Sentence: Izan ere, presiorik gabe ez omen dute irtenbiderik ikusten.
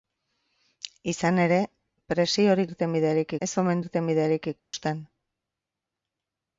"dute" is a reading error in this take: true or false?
true